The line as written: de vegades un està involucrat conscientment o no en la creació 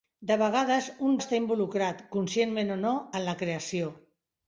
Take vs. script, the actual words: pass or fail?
pass